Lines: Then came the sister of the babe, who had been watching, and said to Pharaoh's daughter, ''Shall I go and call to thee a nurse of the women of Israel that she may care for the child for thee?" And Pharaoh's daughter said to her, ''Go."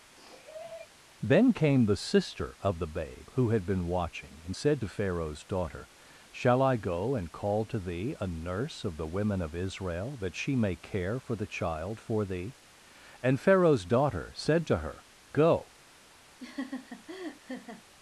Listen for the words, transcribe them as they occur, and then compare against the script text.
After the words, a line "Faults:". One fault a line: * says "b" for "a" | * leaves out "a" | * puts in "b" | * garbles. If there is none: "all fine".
Then came the sister of the babe, who had been watching, and said to Pharaoh's daughter, ''Shall I go and call to thee a nurse of the women of Israel that she may care for the child for thee?" And Pharaoh's daughter said to her, ''Go."
Faults:
all fine